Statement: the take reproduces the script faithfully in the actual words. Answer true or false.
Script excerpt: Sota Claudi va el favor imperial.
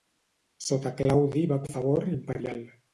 true